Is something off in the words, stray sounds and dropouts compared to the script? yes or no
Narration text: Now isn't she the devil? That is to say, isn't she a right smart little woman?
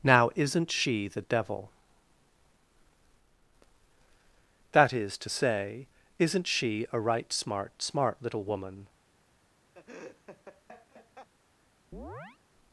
yes